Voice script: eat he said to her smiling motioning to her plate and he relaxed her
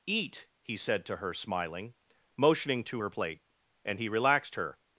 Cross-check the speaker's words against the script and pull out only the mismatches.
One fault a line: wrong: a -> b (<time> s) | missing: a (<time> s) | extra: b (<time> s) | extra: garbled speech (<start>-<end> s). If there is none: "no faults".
no faults